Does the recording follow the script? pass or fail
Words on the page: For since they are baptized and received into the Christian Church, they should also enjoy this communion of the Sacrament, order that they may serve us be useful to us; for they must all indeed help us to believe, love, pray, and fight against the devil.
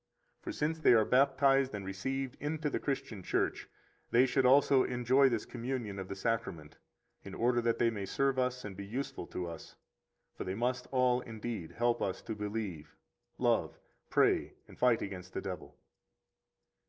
fail